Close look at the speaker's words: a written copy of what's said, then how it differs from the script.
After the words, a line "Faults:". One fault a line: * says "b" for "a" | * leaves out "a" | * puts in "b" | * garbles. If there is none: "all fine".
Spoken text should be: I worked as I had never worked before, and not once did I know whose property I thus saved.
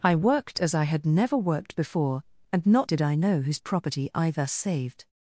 I worked as I had never worked before, and not did I know whose property I thus saved.
Faults:
* leaves out "once"